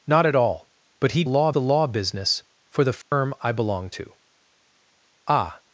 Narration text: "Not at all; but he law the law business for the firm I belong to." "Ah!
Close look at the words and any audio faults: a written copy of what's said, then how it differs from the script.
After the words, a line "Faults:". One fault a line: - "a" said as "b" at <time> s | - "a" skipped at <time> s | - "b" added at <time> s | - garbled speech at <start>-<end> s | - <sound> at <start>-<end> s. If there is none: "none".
"Not at all; but he law the law business for the firm I belong to." "Ah!
Faults:
- dropout at 3.0-3.1 s